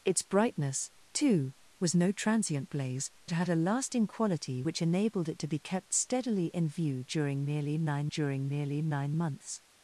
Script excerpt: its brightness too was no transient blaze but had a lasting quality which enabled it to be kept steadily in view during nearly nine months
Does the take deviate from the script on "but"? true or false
true